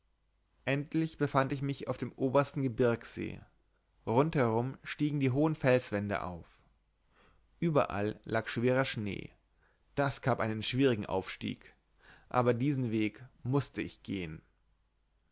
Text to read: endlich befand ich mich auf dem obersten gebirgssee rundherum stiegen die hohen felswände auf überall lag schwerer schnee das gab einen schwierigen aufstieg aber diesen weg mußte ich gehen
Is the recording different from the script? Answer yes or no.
no